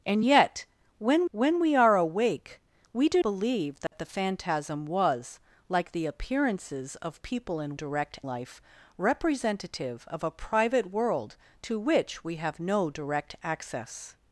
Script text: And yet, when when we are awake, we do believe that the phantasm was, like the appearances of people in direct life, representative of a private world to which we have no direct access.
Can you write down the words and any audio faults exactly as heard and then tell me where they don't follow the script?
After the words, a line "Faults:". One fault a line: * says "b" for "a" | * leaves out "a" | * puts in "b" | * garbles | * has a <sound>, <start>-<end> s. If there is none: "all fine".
And yet, when when we are awake, we do believe that the phantasm was, like the appearances of people in direct life, representative of a private world to which we have no direct access.
Faults:
* has a dropout, 3.9-3.9 s